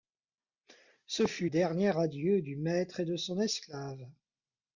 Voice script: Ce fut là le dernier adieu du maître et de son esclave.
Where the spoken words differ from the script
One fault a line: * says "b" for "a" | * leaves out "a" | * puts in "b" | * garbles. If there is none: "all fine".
* leaves out "là le"